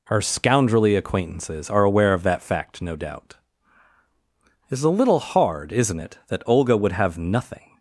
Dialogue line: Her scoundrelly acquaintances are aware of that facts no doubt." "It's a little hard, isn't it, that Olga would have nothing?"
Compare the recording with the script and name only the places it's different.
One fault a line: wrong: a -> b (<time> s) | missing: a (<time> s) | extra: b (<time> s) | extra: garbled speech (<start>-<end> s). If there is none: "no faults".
wrong: facts -> fact (2.4 s)